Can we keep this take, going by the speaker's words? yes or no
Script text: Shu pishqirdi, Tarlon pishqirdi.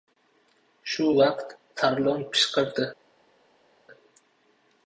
no